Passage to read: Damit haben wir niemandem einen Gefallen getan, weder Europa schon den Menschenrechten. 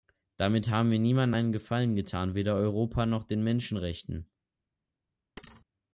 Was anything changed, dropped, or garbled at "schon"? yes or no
yes